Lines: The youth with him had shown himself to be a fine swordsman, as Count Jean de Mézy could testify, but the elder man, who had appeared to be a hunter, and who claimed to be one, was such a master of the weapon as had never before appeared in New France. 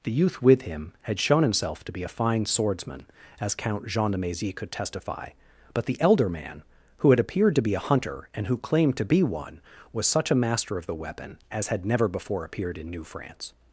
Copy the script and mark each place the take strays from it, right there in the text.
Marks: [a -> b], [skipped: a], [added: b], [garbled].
The youth with him had shown himself to be a fine swordsman, as Count Jean de Mézy could testify, but the elder man, who had appeared to be a hunter, and who claimed to be one, was such a master of the weapon as had never before appeared in New France.